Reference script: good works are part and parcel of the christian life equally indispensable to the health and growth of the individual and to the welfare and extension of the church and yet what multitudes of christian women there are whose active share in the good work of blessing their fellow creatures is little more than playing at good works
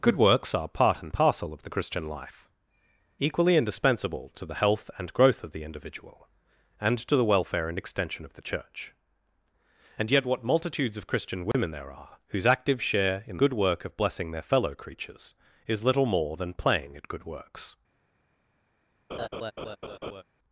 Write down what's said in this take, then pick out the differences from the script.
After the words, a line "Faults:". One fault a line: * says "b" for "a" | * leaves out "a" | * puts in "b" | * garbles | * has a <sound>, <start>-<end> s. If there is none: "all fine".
good works are part and parcel of the christian life equally indispensable to the health and growth of the individual and to the welfare and extension of the church and yet what multitudes of christian women there are whose active share in good work of blessing their fellow creatures is little more than playing at good works
Faults:
* has a dropout, 11.5-11.5 s
* leaves out "the"
* has a laugh, 19.1-20.2 s